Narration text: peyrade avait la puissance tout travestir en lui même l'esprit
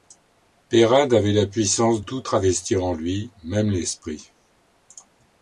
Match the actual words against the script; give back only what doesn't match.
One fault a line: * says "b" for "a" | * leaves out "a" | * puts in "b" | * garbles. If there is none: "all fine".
all fine